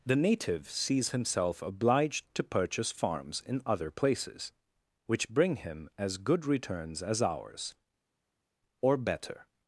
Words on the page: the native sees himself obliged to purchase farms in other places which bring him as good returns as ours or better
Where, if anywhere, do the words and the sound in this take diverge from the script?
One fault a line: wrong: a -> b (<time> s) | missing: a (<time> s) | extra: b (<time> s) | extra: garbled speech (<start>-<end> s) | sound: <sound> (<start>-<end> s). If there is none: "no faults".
no faults